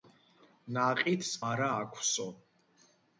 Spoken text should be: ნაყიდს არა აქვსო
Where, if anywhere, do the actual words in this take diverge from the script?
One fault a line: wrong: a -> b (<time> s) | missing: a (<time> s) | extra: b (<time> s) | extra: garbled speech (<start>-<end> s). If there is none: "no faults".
no faults